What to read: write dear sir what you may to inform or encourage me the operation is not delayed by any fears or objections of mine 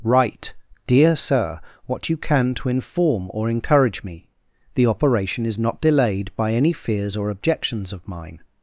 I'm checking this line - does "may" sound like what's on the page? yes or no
no